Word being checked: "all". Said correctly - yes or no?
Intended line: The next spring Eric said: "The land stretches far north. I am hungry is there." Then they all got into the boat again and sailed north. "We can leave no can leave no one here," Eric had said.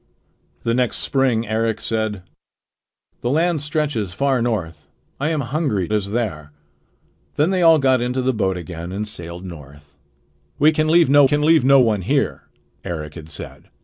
yes